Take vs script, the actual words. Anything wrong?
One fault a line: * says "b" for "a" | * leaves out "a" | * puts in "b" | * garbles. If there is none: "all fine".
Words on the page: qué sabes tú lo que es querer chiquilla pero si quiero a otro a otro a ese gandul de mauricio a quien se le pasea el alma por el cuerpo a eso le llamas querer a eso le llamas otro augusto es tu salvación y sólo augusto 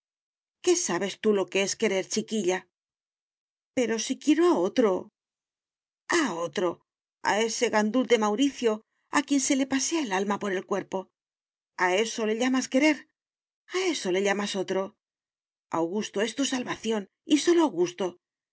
all fine